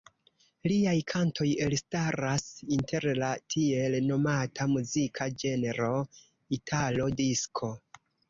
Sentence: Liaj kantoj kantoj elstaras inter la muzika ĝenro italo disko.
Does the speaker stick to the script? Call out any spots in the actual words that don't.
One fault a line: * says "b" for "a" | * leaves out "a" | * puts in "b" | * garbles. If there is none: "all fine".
* leaves out "kantoj"
* puts in "tiel nomata"